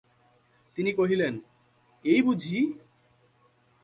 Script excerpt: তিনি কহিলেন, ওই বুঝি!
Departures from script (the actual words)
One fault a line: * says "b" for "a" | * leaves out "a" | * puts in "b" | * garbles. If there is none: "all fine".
* says "এই" for "ওই"